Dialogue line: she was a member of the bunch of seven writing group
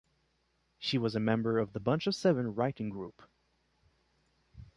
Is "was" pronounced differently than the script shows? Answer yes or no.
no